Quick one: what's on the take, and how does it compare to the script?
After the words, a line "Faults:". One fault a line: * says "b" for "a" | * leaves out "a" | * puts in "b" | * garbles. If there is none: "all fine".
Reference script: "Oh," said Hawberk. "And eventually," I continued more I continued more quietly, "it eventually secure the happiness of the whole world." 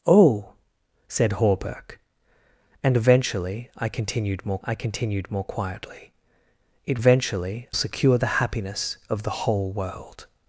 "Oh," said Hawberk. "And eventually," I continued more I continued more quietly, "it eventually secure the happiness of the whole world."
Faults:
all fine